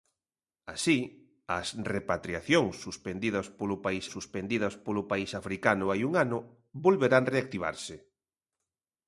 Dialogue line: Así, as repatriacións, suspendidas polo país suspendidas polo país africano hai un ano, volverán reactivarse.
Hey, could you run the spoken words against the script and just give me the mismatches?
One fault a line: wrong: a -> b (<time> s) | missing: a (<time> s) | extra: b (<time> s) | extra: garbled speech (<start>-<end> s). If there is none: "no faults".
no faults